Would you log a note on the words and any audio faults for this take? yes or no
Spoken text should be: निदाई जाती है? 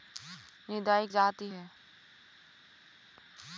no